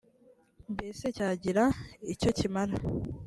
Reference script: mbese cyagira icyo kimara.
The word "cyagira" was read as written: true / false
true